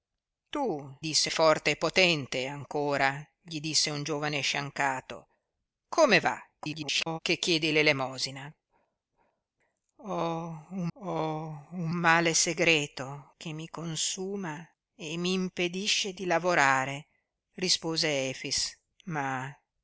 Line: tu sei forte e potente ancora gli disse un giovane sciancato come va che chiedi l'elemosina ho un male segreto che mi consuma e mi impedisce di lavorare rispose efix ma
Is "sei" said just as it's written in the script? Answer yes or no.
no